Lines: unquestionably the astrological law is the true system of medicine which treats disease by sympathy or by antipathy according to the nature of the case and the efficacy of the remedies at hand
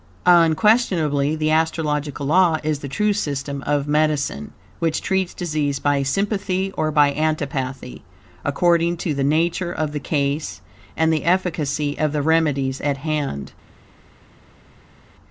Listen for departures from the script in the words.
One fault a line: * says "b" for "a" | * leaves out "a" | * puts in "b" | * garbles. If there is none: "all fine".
all fine